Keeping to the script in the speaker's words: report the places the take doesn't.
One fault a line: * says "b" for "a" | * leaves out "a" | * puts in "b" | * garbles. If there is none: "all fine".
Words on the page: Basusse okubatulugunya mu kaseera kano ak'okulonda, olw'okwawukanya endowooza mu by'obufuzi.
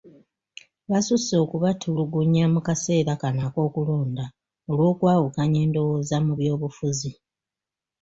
all fine